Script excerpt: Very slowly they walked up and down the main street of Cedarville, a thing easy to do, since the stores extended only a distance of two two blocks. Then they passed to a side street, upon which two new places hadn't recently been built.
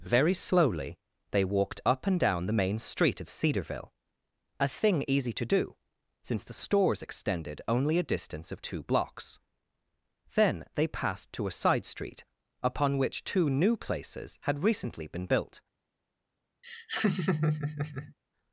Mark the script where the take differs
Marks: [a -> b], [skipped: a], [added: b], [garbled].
Very slowly they walked up and down the main street of Cedarville, a thing easy to do, since the stores extended only a distance of two [skipped: two] blocks. Then they passed to a side street, upon which two new places [hadn't -> had] recently been built.